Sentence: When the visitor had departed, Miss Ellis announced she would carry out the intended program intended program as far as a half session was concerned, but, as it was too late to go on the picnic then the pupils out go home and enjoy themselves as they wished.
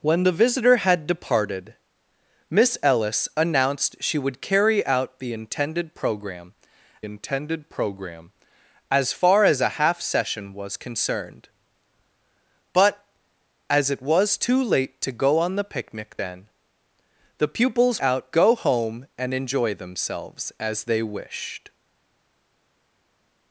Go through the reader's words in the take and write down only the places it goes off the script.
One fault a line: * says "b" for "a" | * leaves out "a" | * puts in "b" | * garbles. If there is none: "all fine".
all fine